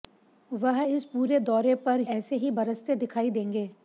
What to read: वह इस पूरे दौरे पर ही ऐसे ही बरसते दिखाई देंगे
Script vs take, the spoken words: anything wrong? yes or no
yes